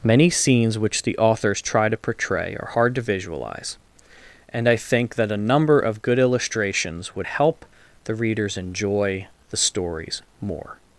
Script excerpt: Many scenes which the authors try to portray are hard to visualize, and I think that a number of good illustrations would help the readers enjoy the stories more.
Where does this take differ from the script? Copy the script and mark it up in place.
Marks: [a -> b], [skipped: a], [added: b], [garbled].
Many scenes which the authors try to portray are hard to visualize, and I think that a number of good illustrations would help the readers enjoy the stories more.